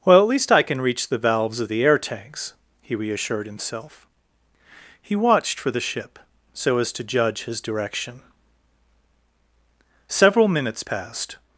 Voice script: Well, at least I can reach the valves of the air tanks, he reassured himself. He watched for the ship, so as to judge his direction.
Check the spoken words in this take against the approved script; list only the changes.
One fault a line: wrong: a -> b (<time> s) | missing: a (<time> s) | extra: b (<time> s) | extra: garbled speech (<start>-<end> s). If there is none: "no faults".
extra: Several minutes passed (10.1 s)